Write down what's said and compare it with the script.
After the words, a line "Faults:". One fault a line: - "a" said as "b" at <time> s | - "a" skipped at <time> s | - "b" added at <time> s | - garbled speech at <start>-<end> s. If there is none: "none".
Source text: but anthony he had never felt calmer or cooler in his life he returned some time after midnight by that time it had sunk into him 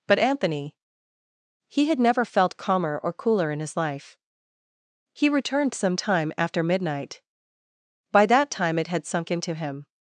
but anthony he had never felt calmer or cooler in his life he returned some time after midnight by that time it had sunk into him
Faults:
none